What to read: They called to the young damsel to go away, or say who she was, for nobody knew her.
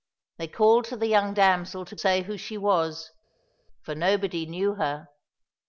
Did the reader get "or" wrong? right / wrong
wrong